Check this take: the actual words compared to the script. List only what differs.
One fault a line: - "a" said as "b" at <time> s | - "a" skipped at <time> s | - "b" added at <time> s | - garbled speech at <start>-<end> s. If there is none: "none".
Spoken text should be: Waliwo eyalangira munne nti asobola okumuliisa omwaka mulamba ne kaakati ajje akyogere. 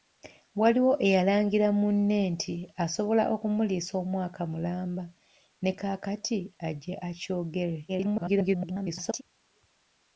- garbled speech at 7.9-9.2 s